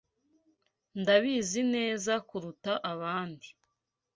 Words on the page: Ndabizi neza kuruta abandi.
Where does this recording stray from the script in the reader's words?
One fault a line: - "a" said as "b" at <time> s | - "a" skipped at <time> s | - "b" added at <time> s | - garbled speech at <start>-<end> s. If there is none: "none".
none